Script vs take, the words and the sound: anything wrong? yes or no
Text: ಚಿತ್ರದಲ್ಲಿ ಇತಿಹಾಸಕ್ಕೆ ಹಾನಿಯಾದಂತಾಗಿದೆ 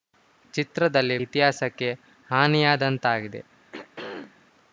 yes